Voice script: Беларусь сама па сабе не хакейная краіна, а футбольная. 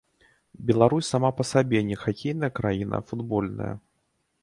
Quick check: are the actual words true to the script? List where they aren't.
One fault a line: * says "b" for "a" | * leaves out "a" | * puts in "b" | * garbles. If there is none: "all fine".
all fine